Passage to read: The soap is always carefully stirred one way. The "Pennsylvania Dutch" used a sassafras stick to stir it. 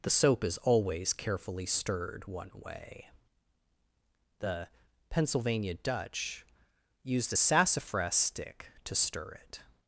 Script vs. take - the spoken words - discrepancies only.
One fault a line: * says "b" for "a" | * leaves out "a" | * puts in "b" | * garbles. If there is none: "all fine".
all fine